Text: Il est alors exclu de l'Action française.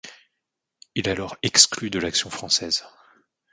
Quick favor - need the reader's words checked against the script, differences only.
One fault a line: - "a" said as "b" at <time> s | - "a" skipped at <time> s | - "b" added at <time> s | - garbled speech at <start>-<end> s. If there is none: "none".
none